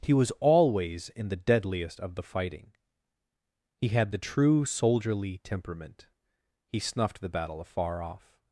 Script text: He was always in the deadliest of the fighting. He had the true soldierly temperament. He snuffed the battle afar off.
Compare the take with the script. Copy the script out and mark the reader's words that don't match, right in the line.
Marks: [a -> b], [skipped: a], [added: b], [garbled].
He was always in the deadliest of the fighting. He had the true soldierly temperament. He snuffed the battle afar off.